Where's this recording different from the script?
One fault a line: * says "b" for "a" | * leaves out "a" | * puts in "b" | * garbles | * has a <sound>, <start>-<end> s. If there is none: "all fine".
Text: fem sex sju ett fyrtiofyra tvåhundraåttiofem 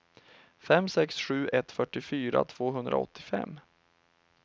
all fine